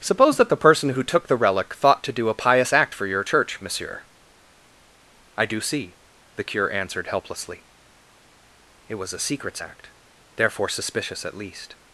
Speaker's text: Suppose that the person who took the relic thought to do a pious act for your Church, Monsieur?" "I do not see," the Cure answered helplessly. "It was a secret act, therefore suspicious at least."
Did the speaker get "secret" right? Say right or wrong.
wrong